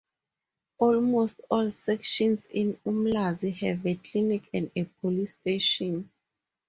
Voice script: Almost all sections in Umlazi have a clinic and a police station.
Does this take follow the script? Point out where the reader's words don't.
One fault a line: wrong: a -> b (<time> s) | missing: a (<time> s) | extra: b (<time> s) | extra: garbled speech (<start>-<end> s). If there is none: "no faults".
no faults